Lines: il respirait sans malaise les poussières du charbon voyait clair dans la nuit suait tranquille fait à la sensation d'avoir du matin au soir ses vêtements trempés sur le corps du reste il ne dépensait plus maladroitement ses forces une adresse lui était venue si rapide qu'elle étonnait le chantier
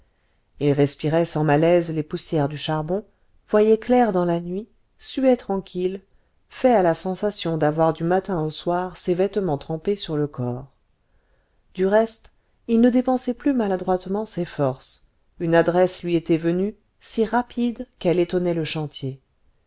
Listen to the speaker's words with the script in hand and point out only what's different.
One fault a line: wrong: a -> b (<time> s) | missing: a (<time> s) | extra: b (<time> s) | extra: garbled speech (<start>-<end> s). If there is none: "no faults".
no faults